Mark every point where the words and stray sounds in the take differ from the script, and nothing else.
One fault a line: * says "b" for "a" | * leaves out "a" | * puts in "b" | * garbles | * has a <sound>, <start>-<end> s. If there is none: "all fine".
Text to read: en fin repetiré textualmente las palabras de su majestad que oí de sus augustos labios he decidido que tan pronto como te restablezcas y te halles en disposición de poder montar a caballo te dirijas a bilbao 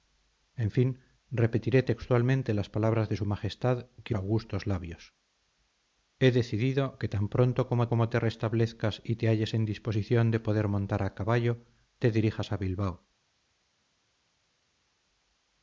* leaves out "oí de sus"
* puts in "como"